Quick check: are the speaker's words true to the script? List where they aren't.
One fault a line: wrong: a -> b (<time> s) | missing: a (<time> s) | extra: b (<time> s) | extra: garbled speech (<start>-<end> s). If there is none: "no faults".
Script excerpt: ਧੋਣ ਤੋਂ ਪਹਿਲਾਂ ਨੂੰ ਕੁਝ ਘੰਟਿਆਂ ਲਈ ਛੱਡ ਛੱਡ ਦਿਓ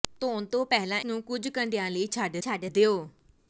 no faults